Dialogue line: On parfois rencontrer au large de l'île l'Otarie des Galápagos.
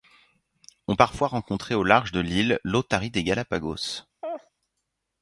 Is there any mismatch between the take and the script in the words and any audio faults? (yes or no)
yes